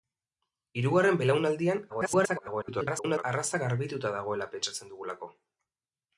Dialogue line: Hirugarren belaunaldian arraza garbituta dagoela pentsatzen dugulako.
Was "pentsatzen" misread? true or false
false